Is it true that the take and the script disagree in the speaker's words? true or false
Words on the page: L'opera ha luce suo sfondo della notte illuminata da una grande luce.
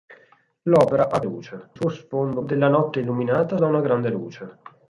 false